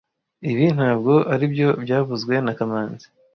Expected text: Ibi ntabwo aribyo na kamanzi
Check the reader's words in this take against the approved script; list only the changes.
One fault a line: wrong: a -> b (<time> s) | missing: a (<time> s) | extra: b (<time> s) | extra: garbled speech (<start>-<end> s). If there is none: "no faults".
extra: byavuzwe (1.8 s)